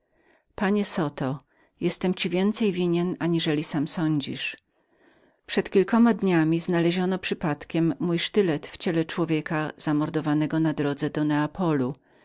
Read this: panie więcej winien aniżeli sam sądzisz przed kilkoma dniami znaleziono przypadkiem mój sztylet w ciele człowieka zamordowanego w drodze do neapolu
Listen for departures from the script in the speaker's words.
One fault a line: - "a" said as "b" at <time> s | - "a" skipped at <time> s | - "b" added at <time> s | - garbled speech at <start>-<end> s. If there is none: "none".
- "zoto jestem ci" added at 0.8 s
- "w" said as "na" at 10.6 s